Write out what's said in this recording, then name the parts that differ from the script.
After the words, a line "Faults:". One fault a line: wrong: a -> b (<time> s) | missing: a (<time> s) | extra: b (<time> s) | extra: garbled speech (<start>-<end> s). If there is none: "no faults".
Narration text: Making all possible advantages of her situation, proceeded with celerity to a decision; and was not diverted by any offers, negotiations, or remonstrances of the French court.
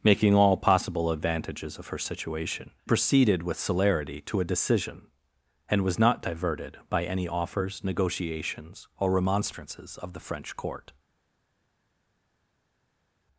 Making all possible advantages of her situation, proceeded with celerity to a decision; and was not diverted by any offers, negotiations, or remonstrances of the French court.
Faults:
no faults